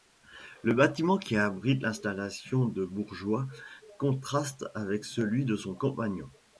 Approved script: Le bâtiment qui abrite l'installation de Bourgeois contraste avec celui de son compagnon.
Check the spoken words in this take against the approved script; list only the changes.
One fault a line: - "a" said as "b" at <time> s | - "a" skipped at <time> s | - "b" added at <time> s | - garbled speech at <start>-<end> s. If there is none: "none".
none